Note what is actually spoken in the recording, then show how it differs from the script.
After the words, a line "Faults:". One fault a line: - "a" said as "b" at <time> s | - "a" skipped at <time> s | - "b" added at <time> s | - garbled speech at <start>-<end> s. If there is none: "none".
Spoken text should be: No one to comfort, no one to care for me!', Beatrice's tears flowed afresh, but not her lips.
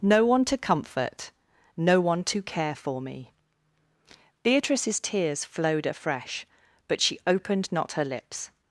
No one to comfort, no one to care for me!', Beatrice's tears flowed afresh, but she opened not her lips.
Faults:
- "she opened" added at 7.0 s